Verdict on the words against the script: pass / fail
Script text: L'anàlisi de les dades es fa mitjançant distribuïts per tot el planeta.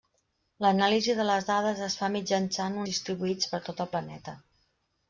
pass